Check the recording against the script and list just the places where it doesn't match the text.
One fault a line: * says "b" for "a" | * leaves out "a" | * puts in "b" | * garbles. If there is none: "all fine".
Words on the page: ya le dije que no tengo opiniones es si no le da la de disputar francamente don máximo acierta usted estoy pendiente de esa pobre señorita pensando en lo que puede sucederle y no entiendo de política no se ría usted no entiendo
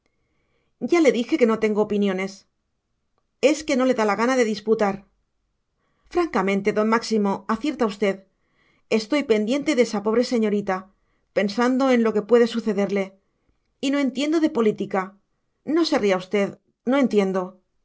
* says "que" for "si"
* puts in "gana"